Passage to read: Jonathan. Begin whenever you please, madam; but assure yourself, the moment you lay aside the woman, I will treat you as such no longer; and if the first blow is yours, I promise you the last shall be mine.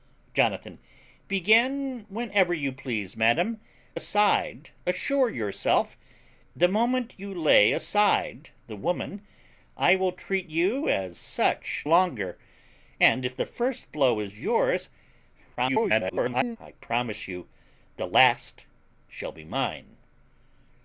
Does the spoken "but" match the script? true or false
false